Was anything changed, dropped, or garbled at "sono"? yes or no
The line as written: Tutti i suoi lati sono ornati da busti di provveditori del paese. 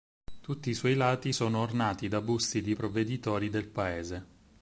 no